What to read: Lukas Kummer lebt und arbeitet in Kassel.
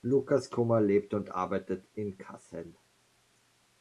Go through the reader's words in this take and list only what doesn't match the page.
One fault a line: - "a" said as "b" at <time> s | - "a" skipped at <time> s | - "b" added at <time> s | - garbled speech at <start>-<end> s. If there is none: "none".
none